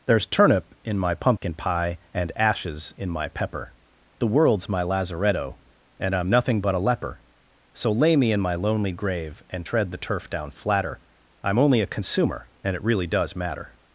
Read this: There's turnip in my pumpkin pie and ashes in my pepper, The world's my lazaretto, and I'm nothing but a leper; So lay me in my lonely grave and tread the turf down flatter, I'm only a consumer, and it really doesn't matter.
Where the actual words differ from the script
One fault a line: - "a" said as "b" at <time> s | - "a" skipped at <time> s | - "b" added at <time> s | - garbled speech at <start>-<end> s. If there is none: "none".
- "doesn't" said as "does" at 13.1 s